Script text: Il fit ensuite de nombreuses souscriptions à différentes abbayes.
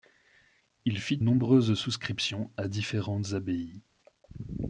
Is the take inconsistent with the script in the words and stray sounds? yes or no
yes